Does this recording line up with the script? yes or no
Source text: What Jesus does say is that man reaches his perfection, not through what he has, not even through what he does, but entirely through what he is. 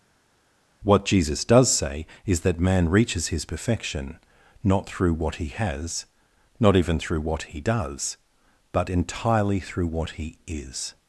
yes